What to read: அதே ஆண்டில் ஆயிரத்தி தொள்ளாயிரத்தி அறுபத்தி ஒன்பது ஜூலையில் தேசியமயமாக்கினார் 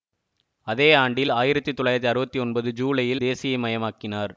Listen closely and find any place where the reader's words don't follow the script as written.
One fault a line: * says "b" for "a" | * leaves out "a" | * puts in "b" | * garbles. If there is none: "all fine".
all fine